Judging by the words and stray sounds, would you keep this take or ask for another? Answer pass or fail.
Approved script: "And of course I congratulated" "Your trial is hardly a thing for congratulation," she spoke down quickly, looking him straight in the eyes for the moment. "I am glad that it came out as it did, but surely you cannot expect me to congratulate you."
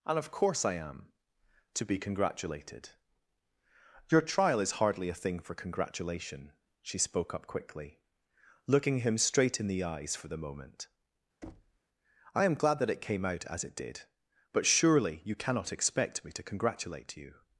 fail